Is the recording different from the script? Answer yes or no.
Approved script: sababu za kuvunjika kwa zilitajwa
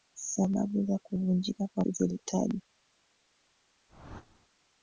no